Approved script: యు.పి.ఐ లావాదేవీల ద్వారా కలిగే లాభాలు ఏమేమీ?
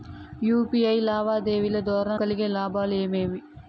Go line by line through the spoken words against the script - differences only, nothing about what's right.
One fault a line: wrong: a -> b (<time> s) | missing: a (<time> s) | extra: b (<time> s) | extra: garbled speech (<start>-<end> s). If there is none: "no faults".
no faults